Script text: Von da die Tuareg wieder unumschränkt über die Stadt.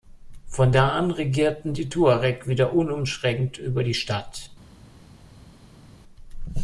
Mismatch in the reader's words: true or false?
true